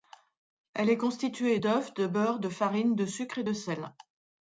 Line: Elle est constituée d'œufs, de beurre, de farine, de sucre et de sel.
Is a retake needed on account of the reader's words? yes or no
no